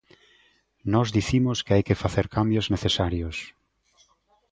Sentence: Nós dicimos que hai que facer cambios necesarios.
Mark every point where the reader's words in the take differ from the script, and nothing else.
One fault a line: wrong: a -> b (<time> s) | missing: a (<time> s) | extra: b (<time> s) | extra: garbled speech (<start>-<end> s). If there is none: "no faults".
no faults